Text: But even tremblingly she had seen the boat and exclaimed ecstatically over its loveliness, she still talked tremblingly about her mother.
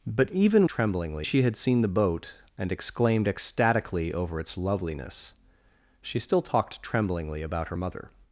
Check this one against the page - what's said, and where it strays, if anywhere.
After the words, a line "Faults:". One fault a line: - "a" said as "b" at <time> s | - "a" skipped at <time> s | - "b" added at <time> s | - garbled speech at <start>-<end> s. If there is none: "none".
But even tremblingly she had seen the boat and exclaimed ecstatically over its loveliness, she still talked tremblingly about her mother.
Faults:
none